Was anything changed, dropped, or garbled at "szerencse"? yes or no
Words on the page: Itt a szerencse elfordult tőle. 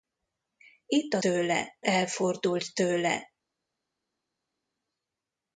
yes